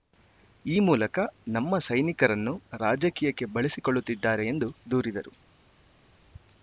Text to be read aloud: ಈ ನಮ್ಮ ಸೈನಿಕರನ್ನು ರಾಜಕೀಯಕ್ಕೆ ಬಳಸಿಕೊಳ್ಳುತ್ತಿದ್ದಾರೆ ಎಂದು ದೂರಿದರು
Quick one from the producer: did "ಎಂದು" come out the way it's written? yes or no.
yes